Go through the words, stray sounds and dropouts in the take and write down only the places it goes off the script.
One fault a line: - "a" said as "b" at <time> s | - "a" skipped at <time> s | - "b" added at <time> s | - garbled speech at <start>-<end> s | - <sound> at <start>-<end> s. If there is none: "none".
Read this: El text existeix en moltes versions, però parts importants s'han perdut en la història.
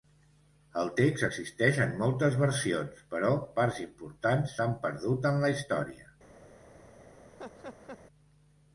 - laugh at 7.4-8.0 s